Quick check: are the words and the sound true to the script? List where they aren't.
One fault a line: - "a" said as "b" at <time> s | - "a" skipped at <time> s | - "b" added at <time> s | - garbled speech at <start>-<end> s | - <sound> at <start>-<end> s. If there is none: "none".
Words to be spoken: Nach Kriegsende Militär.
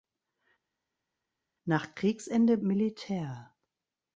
none